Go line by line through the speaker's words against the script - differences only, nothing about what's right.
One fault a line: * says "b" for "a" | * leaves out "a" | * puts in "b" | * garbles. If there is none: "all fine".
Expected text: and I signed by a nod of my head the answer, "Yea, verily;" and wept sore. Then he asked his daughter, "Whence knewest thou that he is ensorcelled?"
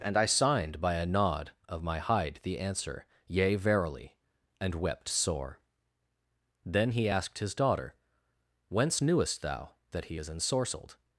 * says "hide" for "head"